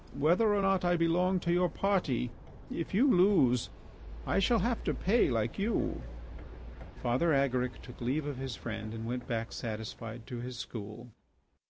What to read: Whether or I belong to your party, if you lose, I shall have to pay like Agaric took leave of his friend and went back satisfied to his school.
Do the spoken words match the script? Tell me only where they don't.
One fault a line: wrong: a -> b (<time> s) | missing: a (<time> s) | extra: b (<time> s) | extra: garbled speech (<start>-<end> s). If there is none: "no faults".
extra: not (0.6 s)
extra: you Father (5.6 s)